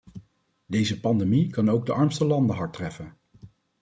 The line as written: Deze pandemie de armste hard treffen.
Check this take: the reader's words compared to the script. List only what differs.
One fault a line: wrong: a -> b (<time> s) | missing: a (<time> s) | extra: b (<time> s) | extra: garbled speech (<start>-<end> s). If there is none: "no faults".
extra: kan ook (1.5 s)
extra: landen (2.2 s)